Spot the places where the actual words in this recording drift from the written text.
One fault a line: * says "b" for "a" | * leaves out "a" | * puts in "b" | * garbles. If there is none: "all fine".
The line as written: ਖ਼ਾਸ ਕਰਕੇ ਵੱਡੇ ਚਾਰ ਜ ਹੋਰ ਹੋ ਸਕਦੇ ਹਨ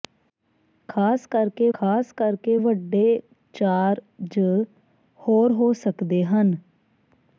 * puts in "ਖ਼ਾਸ ਕਰਕੇ"